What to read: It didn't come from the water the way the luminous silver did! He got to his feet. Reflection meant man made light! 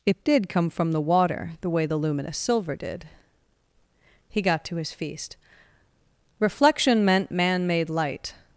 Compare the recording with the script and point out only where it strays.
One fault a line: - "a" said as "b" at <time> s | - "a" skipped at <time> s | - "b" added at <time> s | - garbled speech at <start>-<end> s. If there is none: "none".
- "didn't" said as "did" at 0.2 s
- "feet" said as "feast" at 4.9 s